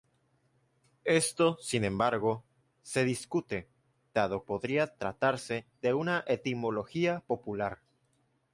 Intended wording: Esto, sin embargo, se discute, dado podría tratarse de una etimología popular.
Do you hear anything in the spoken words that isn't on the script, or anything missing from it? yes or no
no